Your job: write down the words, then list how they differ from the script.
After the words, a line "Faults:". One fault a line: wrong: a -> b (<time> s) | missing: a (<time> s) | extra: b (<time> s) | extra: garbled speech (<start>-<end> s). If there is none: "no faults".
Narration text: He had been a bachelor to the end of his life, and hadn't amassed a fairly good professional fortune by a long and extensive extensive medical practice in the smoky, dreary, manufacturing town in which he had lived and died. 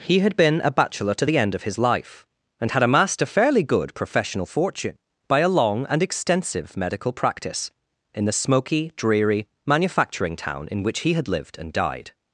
He had been a bachelor to the end of his life, and had amassed a fairly good professional fortune by a long and extensive medical practice in the smoky, dreary, manufacturing town in which he had lived and died.
Faults:
wrong: hadn't -> had (2.7 s)
missing: extensive (6.7 s)